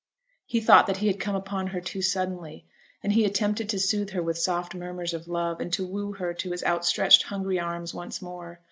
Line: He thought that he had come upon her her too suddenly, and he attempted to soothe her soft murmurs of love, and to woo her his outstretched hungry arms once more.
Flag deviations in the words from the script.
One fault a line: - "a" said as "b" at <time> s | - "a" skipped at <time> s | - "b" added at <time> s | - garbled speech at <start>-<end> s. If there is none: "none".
- "her" skipped at 1.8 s
- "with" added at 4.2 s
- "to" added at 6.3 s